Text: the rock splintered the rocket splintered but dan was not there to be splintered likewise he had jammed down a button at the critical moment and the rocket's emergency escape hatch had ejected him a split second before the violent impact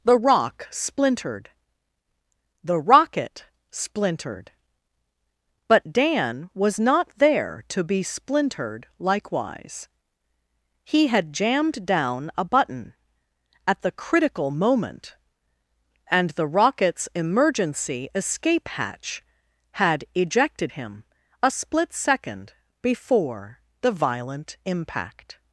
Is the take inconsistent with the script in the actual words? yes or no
no